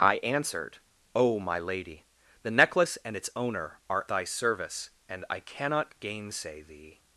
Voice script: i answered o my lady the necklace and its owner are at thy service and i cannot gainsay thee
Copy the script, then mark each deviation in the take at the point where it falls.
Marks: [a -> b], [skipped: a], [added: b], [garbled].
i answered o my lady the necklace and its owner are [skipped: at] thy service and i cannot gainsay thee